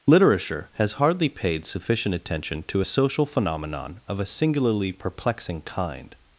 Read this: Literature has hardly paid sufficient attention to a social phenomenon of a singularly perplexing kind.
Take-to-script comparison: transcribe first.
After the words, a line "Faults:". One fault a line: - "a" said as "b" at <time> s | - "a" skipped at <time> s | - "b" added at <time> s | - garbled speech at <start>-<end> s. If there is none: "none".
Literature has hardly paid sufficient attention to a social phenomenon of a singularly perplexing kind.
Faults:
none